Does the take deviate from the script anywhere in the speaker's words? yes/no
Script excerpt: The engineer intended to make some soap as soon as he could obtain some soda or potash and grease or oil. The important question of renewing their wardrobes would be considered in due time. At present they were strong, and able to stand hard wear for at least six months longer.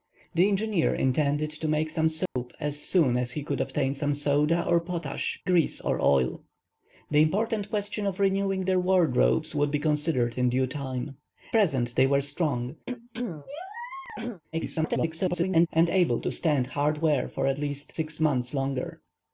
yes